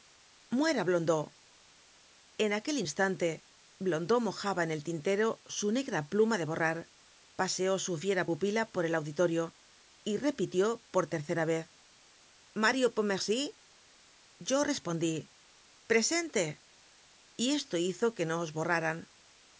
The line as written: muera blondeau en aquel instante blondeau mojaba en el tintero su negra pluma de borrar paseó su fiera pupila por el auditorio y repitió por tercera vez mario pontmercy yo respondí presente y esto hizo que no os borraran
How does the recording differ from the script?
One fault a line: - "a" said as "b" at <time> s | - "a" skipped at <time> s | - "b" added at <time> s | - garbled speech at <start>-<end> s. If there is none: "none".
none